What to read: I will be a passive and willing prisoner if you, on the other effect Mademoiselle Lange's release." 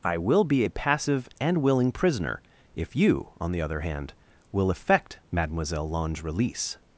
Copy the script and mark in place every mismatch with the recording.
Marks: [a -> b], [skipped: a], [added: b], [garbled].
I will be a passive and willing prisoner if you, on the other [added: hand will] effect Mademoiselle Lange's release."